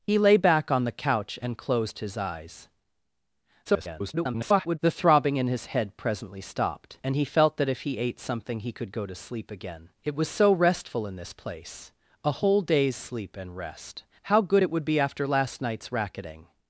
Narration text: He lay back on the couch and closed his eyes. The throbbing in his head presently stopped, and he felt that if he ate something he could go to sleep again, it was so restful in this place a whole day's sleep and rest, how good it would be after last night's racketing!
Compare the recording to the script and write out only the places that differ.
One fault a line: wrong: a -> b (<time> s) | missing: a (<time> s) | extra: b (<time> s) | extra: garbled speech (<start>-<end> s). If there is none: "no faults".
extra: garbled speech (3.7-4.8 s)